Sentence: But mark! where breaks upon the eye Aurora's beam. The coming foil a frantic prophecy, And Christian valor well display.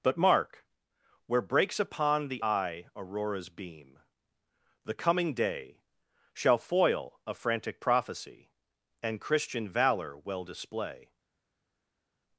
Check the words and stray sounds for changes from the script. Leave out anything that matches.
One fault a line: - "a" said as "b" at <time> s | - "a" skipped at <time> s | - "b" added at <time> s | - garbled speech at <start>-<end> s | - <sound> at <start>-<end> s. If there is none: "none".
- "day Shall" added at 5.3 s